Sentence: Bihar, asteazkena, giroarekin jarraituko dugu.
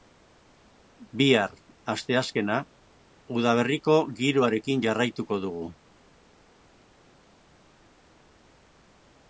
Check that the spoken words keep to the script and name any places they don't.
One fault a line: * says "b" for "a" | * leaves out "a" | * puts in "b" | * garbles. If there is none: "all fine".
* puts in "udaberriko"